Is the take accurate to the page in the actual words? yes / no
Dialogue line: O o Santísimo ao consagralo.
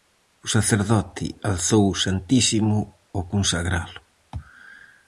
no